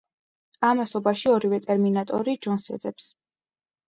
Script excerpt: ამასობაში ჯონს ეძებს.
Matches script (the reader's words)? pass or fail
fail